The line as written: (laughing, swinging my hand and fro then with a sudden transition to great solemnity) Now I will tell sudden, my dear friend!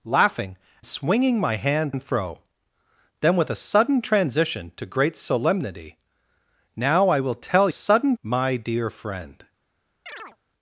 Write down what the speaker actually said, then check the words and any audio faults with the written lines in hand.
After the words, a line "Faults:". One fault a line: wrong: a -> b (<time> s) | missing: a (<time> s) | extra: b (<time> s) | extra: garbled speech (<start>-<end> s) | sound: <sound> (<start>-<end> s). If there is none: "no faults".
(laughing, swinging my hand and fro then with a sudden transition to great solemnity) Now I will tell sudden, my dear friend!
Faults:
sound: chirp (10.1-10.4 s)